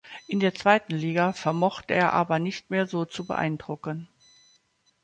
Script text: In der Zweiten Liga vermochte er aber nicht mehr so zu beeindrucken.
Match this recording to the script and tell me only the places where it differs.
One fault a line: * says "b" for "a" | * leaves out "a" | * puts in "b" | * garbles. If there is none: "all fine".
all fine